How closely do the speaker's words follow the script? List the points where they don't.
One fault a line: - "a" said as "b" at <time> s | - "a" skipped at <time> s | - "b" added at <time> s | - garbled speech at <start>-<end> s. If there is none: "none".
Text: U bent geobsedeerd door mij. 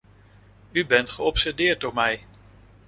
none